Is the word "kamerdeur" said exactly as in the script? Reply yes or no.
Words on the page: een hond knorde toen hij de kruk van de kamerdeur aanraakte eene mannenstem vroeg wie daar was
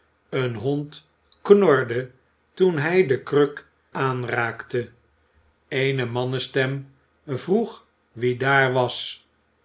no